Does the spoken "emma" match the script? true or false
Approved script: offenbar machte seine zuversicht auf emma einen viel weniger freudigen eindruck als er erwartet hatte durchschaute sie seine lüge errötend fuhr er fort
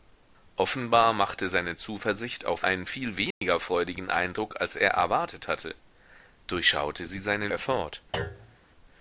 false